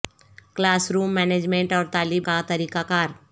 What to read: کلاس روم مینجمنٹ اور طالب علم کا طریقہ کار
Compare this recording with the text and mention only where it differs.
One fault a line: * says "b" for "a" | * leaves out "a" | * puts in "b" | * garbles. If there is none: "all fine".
* leaves out "علم"